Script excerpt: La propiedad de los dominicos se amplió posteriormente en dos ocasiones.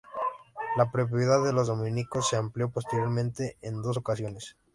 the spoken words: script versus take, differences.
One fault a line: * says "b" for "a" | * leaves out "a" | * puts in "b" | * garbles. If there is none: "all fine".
all fine